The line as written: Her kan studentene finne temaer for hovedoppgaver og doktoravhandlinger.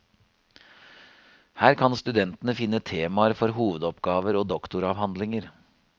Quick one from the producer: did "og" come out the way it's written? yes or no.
yes